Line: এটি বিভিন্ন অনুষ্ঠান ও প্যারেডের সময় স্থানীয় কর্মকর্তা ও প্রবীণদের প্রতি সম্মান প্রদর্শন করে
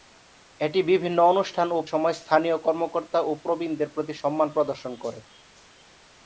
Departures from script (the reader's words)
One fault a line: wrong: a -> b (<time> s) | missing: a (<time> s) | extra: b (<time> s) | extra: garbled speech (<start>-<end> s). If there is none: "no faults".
missing: প্যারেডের (1.8 s)